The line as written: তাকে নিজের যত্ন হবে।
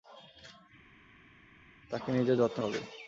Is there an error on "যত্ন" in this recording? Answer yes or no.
no